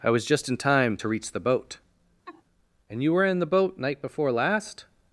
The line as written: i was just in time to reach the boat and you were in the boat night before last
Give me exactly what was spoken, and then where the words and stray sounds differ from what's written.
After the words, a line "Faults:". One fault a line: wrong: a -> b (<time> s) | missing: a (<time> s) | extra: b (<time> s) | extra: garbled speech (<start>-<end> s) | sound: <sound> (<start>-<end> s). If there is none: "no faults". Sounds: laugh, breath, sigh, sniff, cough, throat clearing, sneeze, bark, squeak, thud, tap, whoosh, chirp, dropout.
i was just in time to reach the boat and you were in the boat night before last
Faults:
sound: laugh (2.3-2.4 s)